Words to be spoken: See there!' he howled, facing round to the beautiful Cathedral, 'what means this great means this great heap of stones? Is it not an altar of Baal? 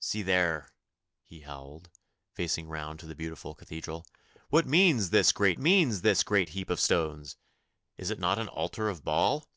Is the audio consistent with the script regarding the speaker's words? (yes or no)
yes